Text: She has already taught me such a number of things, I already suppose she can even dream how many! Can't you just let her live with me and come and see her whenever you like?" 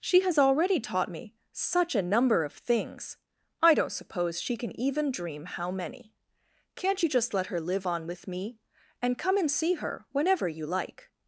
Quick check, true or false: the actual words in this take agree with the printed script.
false